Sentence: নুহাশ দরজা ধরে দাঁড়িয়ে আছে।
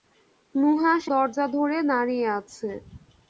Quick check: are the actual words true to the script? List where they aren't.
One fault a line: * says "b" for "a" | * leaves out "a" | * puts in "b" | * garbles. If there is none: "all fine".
all fine